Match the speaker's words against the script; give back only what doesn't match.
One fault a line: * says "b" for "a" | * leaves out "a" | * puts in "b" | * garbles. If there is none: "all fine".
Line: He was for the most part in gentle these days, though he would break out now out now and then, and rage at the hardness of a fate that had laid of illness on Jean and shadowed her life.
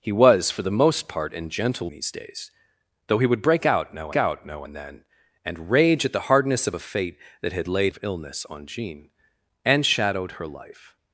all fine